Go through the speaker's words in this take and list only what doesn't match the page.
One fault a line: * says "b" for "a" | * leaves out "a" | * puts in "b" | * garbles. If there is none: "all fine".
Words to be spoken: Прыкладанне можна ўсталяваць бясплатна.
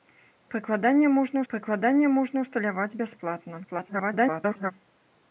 * puts in "прыкладанне можна"
* garbles